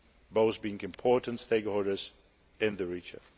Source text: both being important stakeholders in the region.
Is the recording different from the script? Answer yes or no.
no